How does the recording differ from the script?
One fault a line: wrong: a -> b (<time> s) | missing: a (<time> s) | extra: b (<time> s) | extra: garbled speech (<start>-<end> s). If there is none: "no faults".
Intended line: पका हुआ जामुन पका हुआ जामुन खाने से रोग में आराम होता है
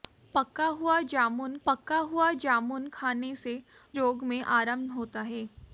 no faults